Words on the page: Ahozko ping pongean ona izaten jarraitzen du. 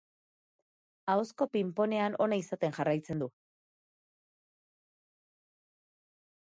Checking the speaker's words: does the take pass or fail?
pass